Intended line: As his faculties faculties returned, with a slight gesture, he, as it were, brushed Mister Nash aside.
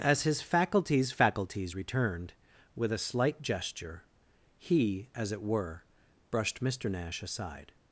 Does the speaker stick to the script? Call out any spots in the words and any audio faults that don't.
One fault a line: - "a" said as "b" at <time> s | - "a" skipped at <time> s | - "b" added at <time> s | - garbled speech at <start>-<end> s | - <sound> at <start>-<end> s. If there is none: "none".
none